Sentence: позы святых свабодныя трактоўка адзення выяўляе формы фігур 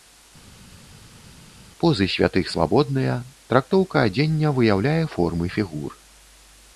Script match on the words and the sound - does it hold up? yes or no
yes